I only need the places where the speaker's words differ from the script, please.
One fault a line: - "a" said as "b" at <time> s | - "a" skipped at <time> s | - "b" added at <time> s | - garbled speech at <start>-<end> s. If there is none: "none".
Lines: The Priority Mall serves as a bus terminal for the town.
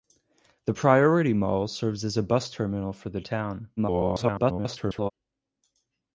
- garbled speech at 3.8-5.1 s